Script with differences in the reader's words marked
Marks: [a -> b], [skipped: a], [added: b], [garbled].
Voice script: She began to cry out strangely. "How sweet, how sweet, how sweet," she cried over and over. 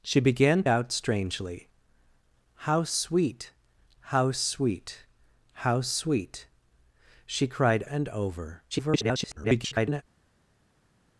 She began [skipped: to cry] out strangely. "How sweet, how sweet, how sweet," she cried [skipped: over] and over. [garbled]